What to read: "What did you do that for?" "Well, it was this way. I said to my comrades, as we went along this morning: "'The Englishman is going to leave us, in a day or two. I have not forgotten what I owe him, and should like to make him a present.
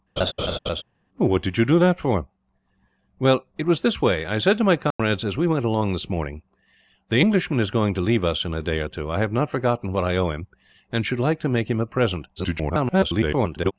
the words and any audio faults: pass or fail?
fail